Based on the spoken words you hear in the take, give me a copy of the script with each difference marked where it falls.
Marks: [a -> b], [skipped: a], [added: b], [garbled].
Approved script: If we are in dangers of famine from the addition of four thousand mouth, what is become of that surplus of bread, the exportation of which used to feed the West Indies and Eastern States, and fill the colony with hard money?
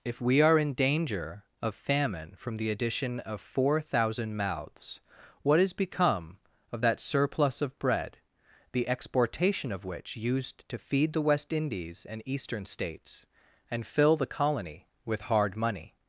If we are in [dangers -> danger] of famine from the addition of four thousand [mouth, -> mouths] what is become of that surplus of bread, the exportation of which used to feed the West Indies and Eastern States, and fill the colony with hard money?